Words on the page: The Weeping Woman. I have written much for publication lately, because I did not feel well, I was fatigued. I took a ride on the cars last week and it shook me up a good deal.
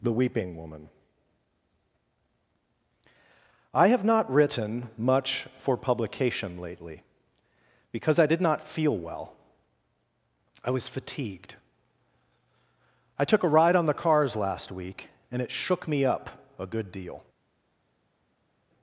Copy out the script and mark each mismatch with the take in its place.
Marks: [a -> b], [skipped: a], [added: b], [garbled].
The Weeping Woman. I have [added: not] written much for publication lately, because I did not feel well, I was fatigued. I took a ride on the cars last week and it shook me up a good deal.